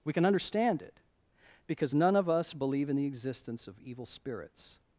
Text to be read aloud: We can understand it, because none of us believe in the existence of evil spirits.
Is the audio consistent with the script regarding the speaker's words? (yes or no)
yes